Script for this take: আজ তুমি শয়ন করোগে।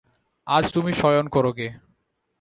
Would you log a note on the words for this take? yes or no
no